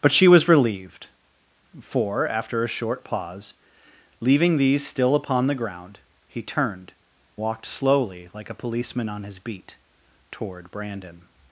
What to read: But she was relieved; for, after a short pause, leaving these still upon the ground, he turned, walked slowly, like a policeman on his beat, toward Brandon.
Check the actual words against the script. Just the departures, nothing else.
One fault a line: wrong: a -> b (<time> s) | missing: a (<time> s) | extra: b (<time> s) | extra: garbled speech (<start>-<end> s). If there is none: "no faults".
no faults